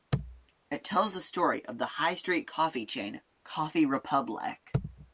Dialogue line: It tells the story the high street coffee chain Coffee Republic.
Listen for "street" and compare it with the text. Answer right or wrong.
right